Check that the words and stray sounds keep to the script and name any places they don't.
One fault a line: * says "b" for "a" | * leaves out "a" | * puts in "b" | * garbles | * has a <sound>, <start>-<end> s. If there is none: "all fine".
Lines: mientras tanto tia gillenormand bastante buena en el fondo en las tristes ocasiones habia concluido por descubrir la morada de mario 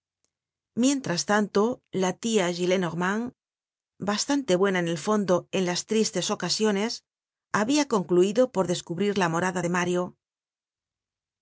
* puts in "la"